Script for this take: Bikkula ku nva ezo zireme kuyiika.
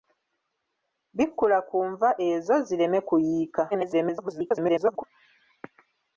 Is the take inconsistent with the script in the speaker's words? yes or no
yes